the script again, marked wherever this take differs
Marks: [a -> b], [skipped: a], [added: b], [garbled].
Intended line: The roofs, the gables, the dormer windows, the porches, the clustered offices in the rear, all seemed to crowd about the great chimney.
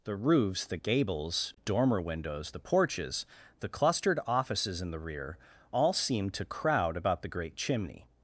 The roofs, the gables, [skipped: the] dormer windows, the porches, the clustered offices in the rear, all seemed to crowd about the great chimney.